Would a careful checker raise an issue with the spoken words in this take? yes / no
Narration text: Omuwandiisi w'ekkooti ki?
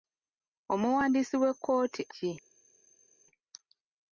no